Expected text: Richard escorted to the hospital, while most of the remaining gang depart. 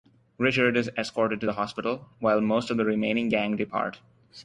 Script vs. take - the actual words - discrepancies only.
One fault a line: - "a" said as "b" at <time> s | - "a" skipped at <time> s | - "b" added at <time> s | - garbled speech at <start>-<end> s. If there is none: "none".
- "is" added at 0.8 s